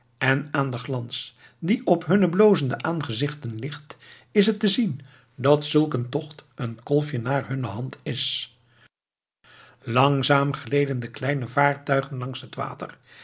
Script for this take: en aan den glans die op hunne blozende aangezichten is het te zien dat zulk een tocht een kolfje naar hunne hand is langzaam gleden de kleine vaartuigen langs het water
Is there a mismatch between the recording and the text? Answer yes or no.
yes